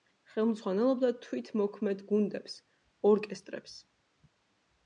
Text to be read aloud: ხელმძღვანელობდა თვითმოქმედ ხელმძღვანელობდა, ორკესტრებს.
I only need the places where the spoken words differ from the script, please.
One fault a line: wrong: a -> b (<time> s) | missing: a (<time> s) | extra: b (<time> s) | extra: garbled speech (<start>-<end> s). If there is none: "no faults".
wrong: ხელმძღვანელობდა -> გუნდებს (2.1 s)